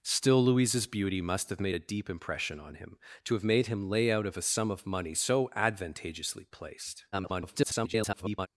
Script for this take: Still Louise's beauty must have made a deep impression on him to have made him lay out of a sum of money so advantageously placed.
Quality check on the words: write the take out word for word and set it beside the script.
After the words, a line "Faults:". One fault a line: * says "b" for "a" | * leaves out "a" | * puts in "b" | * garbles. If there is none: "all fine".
Still Louise's beauty must have made a deep impression on him to have made him lay out of a sum of money so advantageously placed. [garbled]
Faults:
* garbles